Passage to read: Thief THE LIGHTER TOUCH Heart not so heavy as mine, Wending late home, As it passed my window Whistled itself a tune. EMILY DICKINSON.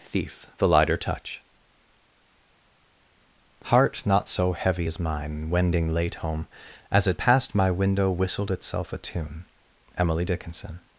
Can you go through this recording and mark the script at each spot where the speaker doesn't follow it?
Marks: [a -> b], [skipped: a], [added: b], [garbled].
Thief THE LIGHTER TOUCH Heart not so heavy as mine, Wending late home, As it passed my window Whistled itself a tune. EMILY DICKINSON.